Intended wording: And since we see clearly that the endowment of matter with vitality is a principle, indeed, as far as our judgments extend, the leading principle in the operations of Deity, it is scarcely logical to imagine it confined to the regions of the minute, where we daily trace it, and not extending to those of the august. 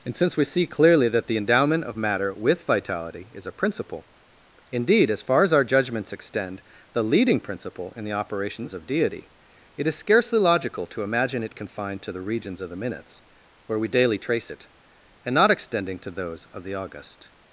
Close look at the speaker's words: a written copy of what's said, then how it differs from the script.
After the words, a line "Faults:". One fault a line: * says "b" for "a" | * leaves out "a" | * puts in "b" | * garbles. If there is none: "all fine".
And since we see clearly that the endowment of matter with vitality is a principle, indeed, as far as our judgments extend, the leading principle in the operations of Deity, it is scarcely logical to imagine it confined to the regions of the minutes, where we daily trace it, and not extending to those of the august.
Faults:
* says "minutes" for "minute"